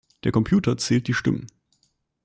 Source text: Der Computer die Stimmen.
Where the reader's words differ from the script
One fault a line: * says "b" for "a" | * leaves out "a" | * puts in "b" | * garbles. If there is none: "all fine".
* puts in "zählt"